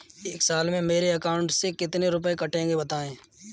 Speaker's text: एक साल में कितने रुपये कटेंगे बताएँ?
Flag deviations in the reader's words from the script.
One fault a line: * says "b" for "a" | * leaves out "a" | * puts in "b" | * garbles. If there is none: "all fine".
* puts in "मेरे अकाउंट से"